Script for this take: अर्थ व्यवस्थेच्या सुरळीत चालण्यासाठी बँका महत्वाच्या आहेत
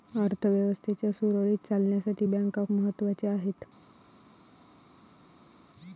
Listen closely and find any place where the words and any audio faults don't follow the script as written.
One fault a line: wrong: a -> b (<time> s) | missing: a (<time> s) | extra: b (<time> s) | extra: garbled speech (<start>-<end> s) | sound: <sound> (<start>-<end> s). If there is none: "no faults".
no faults